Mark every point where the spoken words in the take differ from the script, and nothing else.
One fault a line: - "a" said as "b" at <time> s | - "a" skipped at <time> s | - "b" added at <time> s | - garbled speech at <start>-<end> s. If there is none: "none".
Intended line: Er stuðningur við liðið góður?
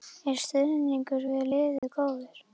none